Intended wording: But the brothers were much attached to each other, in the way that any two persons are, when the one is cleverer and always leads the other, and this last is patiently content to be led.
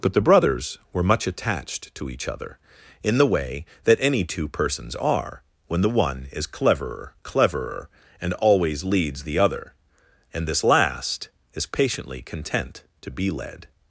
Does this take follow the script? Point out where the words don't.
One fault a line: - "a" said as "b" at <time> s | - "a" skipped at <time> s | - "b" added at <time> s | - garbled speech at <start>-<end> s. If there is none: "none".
- "cleverer" added at 7.2 s